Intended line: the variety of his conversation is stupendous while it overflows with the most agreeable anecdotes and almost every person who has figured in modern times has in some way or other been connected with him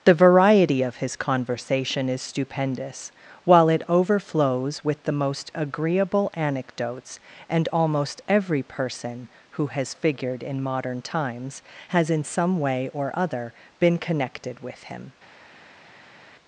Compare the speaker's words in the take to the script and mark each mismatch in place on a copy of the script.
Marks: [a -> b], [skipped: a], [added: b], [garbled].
the variety of his conversation is stupendous while it overflows with the most agreeable anecdotes and almost every person who has figured in modern times has in some way or other been connected with him